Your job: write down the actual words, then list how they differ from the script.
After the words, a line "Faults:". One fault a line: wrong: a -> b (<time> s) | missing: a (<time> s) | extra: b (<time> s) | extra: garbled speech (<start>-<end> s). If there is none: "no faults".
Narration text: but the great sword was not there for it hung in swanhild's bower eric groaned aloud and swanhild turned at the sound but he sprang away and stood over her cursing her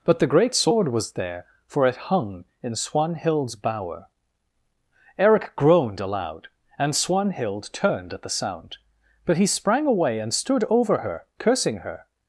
but the great sword was there for it hung in swanhild's bower eric groaned aloud and swanhild turned at the sound but he sprang away and stood over her cursing her
Faults:
missing: not (1.1 s)